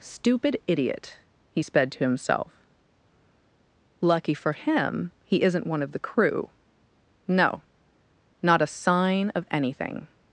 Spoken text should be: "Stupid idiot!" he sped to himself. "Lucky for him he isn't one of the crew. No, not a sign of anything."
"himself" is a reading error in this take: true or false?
false